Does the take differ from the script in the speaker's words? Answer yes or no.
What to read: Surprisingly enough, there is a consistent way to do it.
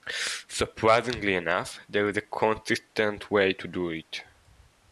no